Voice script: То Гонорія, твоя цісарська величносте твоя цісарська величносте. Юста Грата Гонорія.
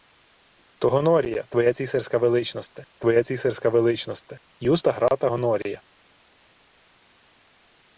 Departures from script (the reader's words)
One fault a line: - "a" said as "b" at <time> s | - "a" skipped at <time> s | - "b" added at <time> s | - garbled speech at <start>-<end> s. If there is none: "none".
none